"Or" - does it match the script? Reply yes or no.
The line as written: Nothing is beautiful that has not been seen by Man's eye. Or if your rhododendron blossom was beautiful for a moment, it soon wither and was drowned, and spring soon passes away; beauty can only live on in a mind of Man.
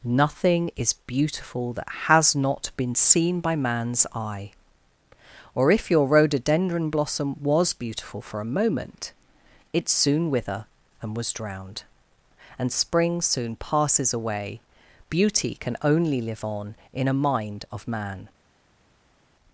yes